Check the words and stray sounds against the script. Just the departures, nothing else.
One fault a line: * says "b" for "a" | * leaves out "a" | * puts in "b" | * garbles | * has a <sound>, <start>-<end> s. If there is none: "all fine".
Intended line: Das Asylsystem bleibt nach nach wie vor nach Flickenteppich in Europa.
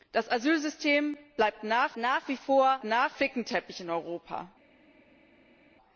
all fine